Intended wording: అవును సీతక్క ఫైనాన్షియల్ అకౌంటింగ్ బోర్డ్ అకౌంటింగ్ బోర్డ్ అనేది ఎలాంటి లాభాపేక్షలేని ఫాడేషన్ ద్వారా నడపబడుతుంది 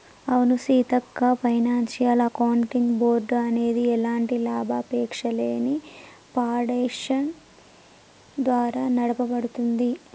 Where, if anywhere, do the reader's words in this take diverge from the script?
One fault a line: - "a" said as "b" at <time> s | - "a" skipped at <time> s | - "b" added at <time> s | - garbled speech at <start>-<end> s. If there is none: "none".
- "అకౌంటింగ్ బోర్డ్" skipped at 3.3 s